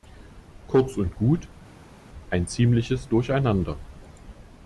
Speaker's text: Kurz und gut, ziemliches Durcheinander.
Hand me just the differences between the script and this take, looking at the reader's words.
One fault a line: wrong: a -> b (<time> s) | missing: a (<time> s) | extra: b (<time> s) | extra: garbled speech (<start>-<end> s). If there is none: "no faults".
extra: ein (2.3 s)